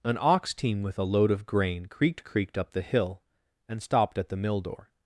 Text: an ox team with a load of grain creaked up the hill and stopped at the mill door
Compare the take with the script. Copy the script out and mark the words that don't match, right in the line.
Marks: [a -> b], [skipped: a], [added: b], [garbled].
an ox team with a load of grain creaked [added: creaked] up the hill and stopped at the mill door